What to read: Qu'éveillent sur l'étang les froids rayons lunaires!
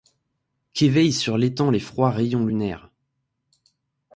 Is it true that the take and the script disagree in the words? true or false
false